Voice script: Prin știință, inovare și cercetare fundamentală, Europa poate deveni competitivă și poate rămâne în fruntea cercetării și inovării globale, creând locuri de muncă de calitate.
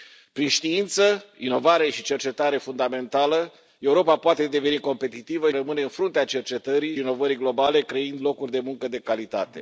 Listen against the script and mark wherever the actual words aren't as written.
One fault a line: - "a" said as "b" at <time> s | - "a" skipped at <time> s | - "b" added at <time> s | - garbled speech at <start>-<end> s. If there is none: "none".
- "și poate" skipped at 5.5 s
- "și" skipped at 7.0 s